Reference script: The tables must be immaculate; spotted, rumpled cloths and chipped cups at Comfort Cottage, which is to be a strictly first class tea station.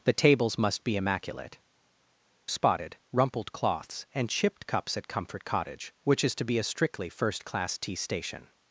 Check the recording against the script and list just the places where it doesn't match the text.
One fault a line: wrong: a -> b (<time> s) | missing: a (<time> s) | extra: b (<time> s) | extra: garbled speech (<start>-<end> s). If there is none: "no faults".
no faults